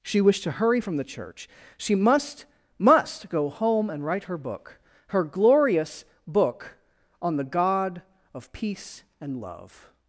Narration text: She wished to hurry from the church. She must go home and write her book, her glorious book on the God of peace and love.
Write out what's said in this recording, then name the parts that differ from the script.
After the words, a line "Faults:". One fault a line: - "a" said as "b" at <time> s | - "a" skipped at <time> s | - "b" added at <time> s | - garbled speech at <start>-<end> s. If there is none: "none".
She wished to hurry from the church. She must must go home and write her book, her glorious book on the God of peace and love.
Faults:
- "must" added at 2.8 s